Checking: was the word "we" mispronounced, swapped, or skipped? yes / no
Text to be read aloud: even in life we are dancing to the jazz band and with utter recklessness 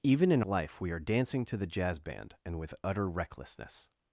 no